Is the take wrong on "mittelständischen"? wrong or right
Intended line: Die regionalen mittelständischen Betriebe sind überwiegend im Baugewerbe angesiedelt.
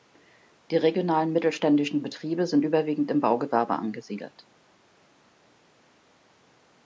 right